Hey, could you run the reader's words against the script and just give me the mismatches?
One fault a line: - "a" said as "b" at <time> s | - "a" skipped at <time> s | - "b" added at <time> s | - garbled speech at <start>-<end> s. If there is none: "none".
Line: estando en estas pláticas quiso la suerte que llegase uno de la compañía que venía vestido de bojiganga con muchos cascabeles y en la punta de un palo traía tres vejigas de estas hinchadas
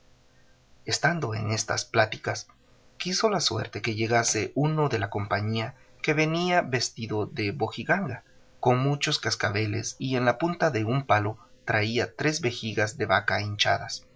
- "estas" said as "vaca" at 13.0 s